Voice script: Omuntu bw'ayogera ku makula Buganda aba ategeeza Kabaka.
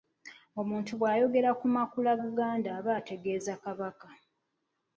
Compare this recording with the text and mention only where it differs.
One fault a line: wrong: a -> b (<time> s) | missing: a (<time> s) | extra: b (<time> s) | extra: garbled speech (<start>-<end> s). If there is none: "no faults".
no faults